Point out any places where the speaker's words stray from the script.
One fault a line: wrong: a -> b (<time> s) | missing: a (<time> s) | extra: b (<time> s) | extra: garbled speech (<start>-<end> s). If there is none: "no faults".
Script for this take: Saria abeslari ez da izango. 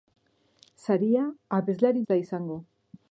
no faults